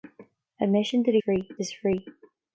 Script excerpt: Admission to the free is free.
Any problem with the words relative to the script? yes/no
no